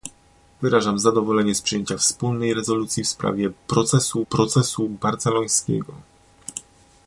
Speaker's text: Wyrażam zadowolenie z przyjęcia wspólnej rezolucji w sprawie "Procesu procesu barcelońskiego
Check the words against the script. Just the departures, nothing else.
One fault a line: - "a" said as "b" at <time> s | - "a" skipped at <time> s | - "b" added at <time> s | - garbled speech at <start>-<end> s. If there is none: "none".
none